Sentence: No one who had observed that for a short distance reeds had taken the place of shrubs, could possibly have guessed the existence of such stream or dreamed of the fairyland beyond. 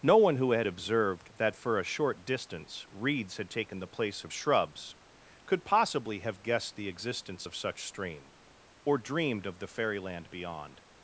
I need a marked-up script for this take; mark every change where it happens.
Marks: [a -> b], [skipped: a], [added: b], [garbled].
No one who had observed that for a short distance reeds had taken the place of shrubs, could possibly have guessed the existence of such stream or dreamed of the fairyland beyond.